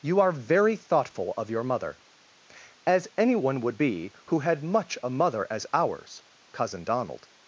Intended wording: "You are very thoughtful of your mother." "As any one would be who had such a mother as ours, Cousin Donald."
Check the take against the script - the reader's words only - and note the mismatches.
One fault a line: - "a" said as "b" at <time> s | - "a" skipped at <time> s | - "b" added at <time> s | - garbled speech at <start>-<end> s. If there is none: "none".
- "such" said as "much" at 4.6 s